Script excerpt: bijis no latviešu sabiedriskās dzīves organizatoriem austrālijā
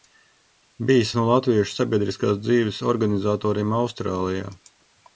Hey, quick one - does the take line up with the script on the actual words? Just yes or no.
yes